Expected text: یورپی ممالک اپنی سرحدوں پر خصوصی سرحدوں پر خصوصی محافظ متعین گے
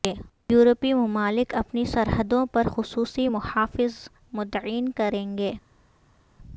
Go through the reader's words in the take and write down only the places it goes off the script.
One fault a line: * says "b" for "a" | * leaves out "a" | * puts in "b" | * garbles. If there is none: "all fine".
* leaves out "سرحدوں پر خصوصی"
* puts in "کریں"